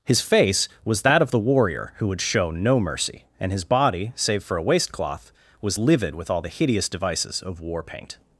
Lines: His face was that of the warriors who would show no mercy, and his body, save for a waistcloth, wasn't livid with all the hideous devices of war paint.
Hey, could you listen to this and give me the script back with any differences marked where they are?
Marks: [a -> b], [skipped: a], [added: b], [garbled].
His face was that of the [warriors -> warrior] who would show no mercy, and his body, save for a waistcloth, [wasn't -> was] livid with all the hideous devices of war paint.